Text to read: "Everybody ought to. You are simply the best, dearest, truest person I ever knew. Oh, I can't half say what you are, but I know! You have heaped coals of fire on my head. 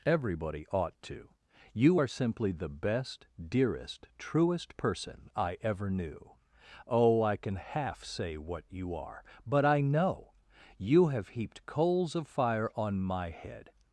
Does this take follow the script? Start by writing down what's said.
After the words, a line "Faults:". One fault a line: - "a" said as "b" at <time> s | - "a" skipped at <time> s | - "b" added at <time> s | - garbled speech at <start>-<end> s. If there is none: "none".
"Everybody ought to. You are simply the best, dearest, truest person I ever knew. Oh, I can half say what you are, but I know! You have heaped coals of fire on my head.
Faults:
- "can't" said as "can" at 7.4 s